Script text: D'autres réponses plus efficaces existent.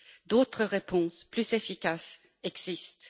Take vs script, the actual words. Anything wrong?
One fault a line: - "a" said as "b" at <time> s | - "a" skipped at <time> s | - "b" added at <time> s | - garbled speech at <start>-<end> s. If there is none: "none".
none